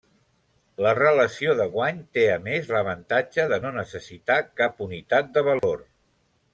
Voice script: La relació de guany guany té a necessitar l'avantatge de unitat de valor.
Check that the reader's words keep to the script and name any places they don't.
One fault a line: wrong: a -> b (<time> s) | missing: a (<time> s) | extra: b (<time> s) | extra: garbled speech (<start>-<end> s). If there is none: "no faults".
missing: guany (2.0 s)
wrong: necessitar -> més (2.5 s)
extra: no necessitar cap (3.7 s)